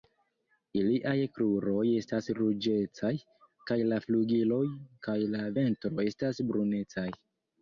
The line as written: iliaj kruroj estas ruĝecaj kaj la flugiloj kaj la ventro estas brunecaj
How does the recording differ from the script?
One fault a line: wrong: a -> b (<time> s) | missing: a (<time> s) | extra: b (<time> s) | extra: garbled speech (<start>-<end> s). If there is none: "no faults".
no faults